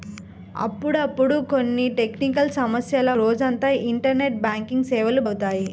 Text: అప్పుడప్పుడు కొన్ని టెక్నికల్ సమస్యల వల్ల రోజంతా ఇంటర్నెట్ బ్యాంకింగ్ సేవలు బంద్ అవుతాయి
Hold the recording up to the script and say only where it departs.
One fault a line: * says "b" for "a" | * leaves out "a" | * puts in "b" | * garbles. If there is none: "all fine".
* leaves out "వల్ల"
* leaves out "బంద్"